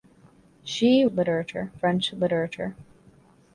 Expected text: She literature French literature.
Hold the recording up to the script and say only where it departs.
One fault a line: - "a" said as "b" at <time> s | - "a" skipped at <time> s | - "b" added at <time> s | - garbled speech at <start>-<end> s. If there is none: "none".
none